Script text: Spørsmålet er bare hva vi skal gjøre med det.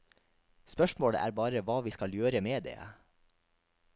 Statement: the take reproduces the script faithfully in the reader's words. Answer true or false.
true